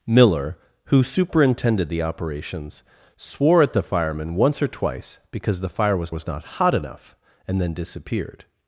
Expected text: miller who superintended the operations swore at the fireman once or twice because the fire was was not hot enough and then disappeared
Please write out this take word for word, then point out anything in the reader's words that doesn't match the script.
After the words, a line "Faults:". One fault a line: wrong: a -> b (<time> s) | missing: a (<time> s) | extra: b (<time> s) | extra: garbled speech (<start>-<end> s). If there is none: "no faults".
miller who superintended the operations swore at the fireman once or twice because the fire was was not hot enough and then disappeared
Faults:
no faults